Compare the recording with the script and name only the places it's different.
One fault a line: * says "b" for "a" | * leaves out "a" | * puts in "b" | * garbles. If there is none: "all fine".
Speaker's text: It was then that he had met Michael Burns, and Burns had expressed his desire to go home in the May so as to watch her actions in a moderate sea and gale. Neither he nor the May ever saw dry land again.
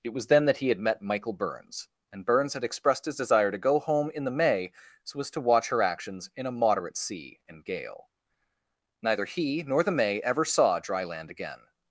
all fine